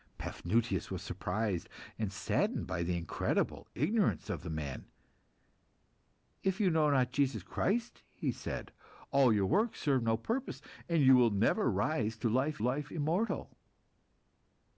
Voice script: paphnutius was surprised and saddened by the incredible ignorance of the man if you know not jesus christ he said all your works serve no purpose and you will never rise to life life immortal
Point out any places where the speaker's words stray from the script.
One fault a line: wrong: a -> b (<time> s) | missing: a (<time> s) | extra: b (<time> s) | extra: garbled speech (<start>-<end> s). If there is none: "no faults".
no faults